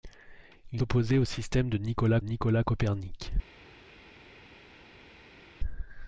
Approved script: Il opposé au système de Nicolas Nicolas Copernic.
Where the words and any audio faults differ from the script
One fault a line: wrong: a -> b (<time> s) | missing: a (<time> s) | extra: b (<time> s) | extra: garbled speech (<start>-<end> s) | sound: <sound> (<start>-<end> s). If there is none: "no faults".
no faults